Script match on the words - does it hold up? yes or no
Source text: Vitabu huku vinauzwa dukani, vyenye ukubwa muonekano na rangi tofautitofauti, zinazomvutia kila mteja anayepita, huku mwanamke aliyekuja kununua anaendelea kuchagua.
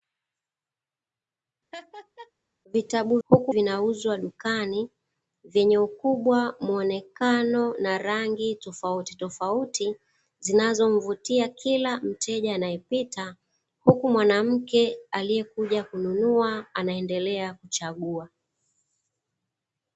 yes